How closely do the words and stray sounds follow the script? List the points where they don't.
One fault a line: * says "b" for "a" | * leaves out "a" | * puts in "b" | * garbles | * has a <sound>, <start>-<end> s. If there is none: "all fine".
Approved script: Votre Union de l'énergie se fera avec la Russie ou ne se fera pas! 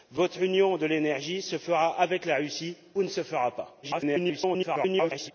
* garbles